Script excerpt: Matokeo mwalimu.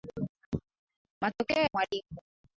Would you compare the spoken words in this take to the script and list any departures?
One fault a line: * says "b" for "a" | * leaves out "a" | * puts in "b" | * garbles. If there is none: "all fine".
all fine